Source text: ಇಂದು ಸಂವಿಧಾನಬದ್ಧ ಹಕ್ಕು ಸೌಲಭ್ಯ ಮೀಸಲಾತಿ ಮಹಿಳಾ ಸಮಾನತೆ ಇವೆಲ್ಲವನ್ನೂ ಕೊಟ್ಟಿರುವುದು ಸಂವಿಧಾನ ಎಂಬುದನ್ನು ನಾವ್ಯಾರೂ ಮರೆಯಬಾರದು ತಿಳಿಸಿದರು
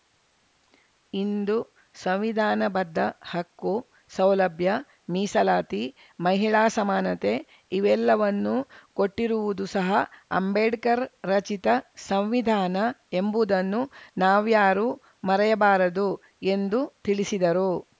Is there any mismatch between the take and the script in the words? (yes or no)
yes